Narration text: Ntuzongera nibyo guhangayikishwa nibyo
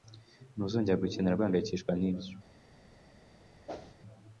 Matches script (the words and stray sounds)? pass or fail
fail